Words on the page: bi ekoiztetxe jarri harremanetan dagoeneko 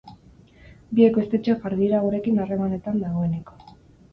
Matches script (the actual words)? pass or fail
fail